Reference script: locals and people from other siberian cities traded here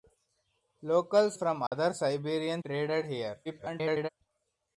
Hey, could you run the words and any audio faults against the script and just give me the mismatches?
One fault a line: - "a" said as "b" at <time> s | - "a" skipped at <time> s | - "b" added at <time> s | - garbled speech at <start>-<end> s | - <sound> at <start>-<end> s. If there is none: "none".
- "and people" skipped at 1.4 s
- dropout at 1.7-1.7 s
- "cities" skipped at 2.6 s
- garbled speech at 3.4-4.1 s